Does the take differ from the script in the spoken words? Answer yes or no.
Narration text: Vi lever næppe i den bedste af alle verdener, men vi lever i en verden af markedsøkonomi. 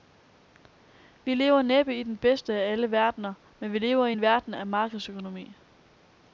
no